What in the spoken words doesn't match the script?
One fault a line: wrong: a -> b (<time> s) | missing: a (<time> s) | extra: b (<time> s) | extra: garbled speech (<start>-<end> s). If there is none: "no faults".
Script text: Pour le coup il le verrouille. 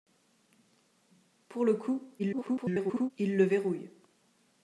extra: garbled speech (2.2-3.1 s)